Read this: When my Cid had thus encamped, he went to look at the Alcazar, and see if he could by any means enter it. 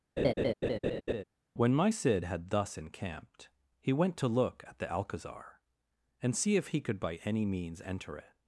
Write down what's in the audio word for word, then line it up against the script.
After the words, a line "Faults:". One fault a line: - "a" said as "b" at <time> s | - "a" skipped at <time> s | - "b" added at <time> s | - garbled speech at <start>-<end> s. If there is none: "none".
When my Cid had thus encamped, he went to look at the Alcazar, and see if he could by any means enter it.
Faults:
none